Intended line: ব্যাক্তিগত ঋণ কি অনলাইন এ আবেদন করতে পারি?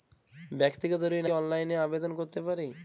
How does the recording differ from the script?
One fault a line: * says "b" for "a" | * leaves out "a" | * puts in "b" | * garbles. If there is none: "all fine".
all fine